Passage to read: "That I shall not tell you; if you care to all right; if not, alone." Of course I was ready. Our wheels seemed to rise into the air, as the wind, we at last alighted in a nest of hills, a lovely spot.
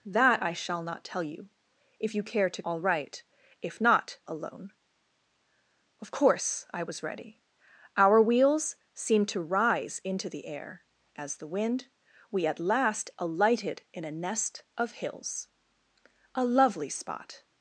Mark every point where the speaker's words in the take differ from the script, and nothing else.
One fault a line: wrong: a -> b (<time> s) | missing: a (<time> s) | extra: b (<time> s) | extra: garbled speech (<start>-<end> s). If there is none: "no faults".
no faults